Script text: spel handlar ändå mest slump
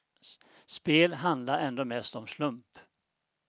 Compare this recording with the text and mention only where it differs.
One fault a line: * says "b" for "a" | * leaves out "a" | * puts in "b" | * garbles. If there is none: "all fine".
* puts in "om"